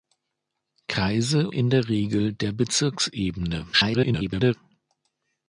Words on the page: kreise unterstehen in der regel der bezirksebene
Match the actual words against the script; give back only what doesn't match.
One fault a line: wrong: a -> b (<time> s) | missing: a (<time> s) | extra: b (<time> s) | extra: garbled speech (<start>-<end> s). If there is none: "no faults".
missing: unterstehen (1.5 s)
extra: garbled speech (3.7-4.5 s)